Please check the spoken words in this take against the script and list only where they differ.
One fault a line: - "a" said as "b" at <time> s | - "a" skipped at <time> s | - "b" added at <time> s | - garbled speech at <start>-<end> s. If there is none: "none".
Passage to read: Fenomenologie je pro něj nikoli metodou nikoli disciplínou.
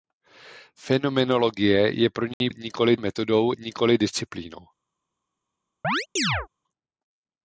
none